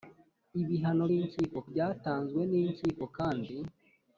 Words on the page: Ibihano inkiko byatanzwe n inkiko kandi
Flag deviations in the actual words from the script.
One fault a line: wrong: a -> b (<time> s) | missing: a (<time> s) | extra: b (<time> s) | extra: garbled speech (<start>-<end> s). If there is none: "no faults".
no faults